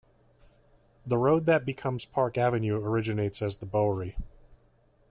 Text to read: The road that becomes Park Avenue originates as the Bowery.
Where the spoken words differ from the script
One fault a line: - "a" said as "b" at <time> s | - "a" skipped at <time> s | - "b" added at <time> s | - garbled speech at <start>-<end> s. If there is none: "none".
none